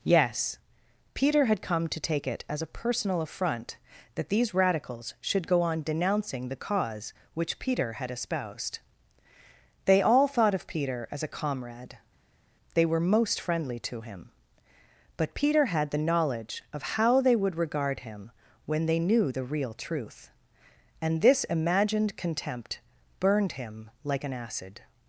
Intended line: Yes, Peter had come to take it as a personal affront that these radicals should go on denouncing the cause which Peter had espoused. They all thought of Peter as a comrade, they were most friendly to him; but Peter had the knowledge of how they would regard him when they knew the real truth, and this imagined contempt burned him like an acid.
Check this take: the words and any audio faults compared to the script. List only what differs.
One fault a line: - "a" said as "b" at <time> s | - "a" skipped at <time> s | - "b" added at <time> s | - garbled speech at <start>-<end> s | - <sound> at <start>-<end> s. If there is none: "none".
none